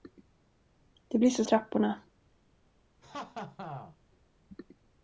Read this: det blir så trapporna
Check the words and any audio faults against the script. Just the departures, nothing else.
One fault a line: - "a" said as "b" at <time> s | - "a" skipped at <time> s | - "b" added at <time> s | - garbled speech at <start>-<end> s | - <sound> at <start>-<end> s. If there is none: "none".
- laugh at 3.0-4.0 s